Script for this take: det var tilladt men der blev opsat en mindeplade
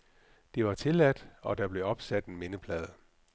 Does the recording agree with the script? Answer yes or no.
no